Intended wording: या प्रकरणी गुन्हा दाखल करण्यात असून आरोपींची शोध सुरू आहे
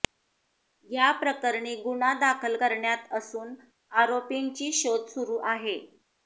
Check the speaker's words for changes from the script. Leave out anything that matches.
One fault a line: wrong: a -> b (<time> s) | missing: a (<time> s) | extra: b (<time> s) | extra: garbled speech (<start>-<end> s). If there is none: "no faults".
no faults